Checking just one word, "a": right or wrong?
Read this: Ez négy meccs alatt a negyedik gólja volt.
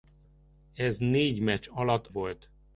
wrong